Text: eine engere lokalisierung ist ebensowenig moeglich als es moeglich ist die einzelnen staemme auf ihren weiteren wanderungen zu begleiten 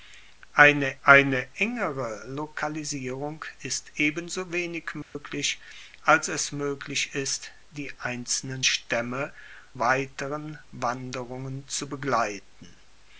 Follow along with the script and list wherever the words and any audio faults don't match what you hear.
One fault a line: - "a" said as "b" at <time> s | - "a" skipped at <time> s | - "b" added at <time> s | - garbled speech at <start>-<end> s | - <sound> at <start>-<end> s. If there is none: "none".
- "eine" added at 1.0 s
- dropout at 5.0-5.2 s
- "auf ihren" skipped at 9.3 s